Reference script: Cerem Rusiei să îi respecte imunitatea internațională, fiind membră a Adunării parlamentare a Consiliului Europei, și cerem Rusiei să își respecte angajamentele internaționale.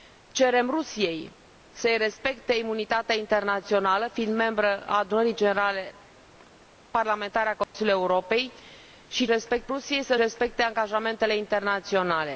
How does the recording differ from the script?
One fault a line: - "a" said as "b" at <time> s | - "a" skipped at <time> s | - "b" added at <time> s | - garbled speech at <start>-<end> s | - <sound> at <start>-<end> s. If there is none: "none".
- dropout at 7.6-7.7 s
- "cerem" said as "respecte" at 9.3 s
- "își" skipped at 10.1 s